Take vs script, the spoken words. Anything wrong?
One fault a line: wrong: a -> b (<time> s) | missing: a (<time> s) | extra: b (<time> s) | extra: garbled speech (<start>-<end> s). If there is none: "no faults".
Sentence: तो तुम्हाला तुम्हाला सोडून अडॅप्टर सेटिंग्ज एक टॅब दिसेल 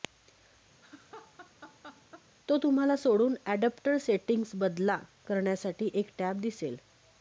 missing: तुम्हाला (2.9 s)
extra: बदला करण्यासाठी (4.5 s)